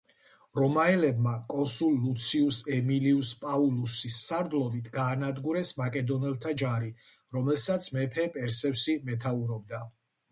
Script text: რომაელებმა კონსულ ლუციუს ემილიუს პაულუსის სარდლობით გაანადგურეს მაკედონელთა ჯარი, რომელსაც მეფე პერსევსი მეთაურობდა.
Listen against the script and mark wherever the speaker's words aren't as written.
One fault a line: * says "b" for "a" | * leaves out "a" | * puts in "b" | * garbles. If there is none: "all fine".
all fine